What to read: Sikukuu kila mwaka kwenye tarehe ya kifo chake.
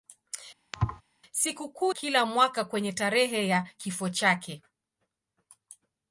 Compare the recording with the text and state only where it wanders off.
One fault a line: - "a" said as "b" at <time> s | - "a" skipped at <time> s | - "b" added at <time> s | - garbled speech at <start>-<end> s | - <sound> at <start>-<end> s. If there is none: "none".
- thud at 0.7-1.0 s